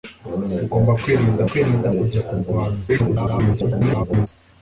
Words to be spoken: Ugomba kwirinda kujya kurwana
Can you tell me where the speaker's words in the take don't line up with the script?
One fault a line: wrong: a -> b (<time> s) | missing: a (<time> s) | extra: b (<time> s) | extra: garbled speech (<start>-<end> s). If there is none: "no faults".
extra: kwirinda (1.5 s)
extra: garbled speech (2.9-4.3 s)